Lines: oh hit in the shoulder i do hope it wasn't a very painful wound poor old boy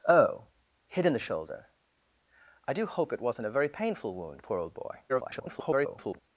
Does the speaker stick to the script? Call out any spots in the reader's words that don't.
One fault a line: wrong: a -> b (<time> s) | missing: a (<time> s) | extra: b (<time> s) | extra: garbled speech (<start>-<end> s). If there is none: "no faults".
extra: garbled speech (5.1-6.2 s)